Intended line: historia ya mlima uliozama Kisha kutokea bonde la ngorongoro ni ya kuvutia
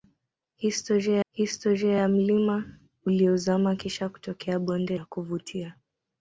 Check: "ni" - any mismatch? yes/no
yes